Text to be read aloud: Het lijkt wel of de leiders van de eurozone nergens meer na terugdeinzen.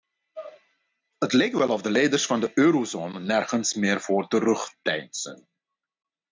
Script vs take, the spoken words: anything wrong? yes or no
yes